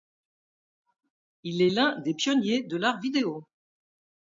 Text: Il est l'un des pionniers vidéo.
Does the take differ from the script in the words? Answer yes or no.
yes